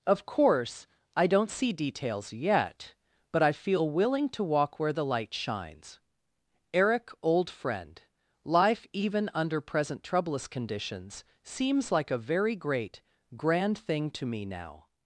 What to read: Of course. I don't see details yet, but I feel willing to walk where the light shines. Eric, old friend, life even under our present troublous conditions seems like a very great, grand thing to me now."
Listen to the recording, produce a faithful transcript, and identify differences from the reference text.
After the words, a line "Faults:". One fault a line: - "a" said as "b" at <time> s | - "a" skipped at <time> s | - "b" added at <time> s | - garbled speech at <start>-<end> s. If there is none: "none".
Of course. I don't see details yet, but I feel willing to walk where the light shines. Eric, old friend, life even under present troublous conditions seems like a very great, grand thing to me now."
Faults:
- "our" skipped at 9.6 s